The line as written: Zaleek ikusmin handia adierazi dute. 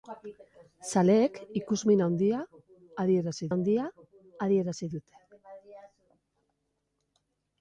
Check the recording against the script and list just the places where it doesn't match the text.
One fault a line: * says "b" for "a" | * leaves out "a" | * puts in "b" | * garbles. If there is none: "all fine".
* puts in "handia adierazi"